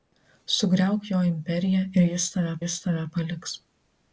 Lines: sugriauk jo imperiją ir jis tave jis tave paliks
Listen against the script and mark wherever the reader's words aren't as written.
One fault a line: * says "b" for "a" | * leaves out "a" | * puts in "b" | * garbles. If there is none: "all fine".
all fine